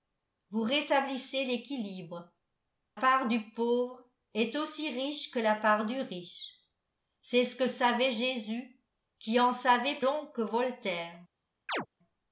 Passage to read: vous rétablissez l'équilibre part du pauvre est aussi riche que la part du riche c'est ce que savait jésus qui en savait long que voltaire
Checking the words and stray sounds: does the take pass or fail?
fail